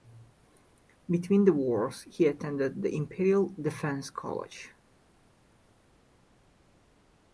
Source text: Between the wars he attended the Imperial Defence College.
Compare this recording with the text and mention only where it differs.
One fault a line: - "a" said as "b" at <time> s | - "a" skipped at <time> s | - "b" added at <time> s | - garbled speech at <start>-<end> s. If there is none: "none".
none